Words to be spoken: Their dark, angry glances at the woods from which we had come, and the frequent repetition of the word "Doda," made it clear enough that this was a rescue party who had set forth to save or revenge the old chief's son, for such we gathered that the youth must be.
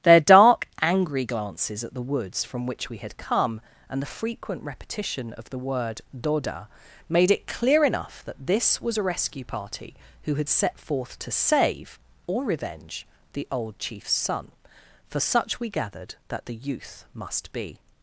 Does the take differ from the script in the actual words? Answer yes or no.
no